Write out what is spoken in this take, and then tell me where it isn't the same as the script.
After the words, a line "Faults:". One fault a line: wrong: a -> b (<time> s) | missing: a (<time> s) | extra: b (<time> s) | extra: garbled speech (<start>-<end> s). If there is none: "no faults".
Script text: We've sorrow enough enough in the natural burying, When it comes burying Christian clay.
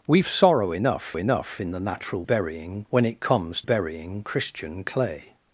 We've sorrow enough enough in the natural burying, When it comes burying Christian clay.
Faults:
no faults